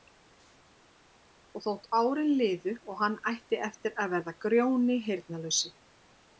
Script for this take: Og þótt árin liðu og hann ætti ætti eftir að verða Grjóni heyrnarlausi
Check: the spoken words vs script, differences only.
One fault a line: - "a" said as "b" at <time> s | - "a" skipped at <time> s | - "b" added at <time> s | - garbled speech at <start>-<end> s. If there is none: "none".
- "ætti" skipped at 3.6 s